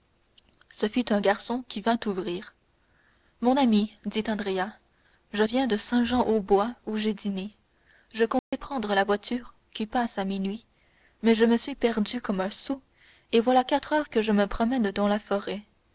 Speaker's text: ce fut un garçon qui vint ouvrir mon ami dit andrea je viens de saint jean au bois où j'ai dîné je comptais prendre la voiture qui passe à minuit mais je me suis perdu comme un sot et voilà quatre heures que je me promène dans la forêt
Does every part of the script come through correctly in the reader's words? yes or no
yes